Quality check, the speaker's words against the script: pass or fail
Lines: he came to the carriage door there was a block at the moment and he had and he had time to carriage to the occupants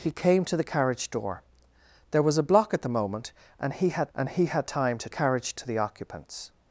pass